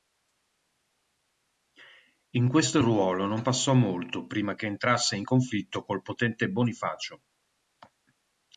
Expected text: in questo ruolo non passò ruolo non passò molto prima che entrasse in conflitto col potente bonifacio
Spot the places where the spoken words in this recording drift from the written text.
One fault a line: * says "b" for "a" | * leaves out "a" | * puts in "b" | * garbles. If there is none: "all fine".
* leaves out "ruolo non passò"